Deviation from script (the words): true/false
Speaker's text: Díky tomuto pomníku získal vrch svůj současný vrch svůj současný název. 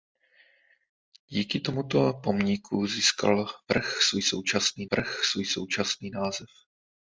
false